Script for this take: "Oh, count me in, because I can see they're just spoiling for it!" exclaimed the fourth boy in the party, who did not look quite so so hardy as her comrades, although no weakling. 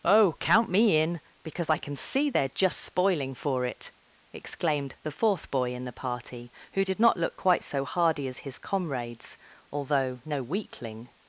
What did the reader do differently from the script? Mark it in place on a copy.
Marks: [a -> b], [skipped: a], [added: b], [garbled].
"Oh, count me in, because I can see they're just spoiling for it!" exclaimed the fourth boy in the party, who did not look quite so [skipped: so] hardy as [her -> his] comrades, although no weakling.